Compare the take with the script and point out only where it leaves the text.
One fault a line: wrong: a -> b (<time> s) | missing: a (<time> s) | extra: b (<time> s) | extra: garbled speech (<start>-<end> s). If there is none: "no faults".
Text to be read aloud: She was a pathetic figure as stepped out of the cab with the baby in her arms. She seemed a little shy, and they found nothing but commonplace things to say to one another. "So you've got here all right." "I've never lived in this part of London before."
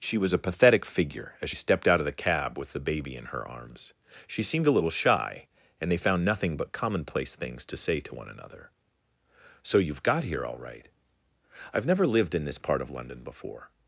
no faults